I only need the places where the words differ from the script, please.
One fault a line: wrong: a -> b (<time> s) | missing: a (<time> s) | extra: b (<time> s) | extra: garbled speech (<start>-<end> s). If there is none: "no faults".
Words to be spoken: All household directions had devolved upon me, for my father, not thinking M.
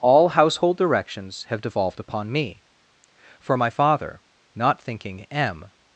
wrong: had -> have (1.5 s)